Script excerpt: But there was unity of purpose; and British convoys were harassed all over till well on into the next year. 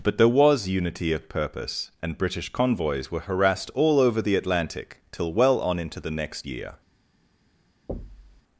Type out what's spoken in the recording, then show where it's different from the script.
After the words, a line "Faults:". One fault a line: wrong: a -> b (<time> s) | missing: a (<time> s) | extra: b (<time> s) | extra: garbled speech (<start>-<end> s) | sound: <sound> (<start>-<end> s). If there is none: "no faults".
But there was unity of purpose; and British convoys were harassed all over the Atlantic till well on into the next year.
Faults:
extra: the Atlantic (4.2 s)
sound: thud (7.9-8.4 s)